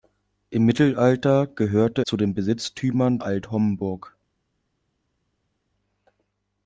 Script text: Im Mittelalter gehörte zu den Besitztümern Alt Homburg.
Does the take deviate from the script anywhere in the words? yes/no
no